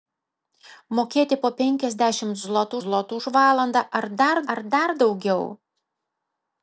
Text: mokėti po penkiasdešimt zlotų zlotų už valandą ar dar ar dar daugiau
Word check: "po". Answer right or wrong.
right